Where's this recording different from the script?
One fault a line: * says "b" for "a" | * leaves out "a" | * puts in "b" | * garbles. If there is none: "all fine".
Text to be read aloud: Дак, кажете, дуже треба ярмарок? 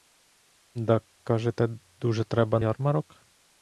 all fine